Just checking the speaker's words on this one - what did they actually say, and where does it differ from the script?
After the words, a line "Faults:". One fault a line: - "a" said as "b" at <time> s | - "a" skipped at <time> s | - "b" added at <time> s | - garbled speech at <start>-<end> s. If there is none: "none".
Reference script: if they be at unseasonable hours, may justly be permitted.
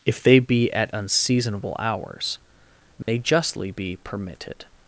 if they be at unseasonable hours, may justly be permitted.
Faults:
none